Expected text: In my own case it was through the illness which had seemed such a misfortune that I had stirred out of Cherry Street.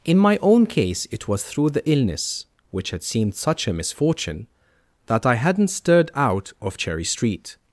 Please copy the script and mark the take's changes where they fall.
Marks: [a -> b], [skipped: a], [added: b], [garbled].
In my own case it was through the illness which had seemed such a misfortune that I [had -> hadn't] stirred out of Cherry Street.